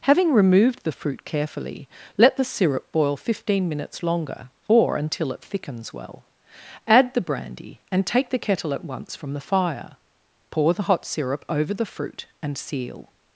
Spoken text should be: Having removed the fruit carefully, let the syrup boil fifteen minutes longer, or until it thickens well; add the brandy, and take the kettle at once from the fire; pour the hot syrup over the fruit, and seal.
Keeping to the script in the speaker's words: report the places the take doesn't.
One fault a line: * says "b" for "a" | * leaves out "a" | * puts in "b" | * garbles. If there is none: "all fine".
all fine